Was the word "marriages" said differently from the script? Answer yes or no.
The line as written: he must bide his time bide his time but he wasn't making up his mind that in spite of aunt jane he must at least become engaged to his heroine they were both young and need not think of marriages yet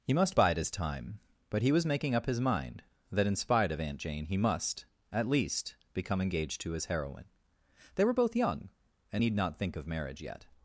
yes